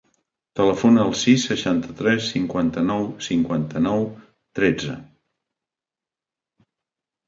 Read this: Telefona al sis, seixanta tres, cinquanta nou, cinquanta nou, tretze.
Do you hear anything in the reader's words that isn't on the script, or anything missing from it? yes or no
no